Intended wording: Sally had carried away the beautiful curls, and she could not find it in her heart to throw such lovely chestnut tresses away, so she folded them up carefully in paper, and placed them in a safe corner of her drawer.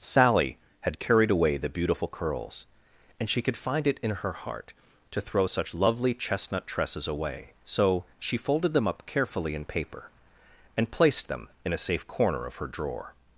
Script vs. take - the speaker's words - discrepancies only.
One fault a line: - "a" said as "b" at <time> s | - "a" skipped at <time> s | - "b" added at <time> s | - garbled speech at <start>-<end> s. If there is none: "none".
- "not" skipped at 3.5 s